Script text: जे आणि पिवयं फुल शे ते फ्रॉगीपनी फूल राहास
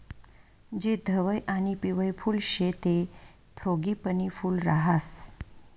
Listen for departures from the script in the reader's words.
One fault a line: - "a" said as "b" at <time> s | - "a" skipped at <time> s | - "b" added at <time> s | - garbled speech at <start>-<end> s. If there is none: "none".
- "धवयं" added at 1.1 s